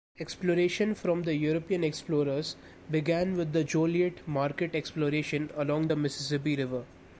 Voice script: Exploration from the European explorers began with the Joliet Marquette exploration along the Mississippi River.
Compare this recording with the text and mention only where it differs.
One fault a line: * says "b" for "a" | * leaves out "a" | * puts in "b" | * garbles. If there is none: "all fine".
all fine